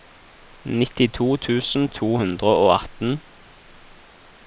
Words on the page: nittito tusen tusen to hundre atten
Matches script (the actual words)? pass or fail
fail